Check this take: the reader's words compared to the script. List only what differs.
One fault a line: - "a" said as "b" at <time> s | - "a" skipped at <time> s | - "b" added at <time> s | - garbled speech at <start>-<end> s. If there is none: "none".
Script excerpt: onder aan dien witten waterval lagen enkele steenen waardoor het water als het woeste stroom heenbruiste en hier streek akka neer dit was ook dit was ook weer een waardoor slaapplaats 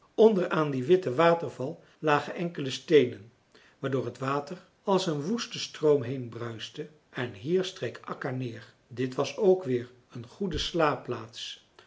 - "het" said as "een" at 5.1 s
- "dit was ook" skipped at 9.6 s
- "waardoor" said as "goede" at 10.3 s